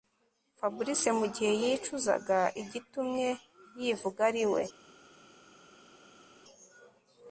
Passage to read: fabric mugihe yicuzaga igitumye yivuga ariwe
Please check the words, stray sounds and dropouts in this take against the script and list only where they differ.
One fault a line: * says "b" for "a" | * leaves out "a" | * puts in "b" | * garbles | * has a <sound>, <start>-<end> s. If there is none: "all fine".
all fine